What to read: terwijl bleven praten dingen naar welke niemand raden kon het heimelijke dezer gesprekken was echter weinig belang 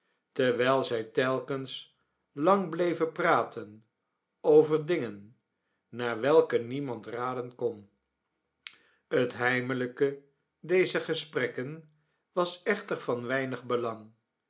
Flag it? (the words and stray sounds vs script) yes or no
yes